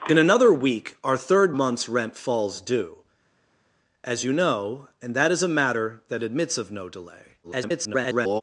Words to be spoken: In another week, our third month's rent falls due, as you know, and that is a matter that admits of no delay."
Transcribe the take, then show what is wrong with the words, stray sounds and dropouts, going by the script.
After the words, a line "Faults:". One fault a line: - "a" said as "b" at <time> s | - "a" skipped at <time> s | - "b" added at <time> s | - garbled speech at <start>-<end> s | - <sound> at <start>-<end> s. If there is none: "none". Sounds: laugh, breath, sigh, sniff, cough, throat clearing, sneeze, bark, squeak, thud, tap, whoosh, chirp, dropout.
In another week, our third month's rent falls due, as you know, and that is a matter that admits of no delay." [garbled]
Faults:
- garbled speech at 7.4-8.4 s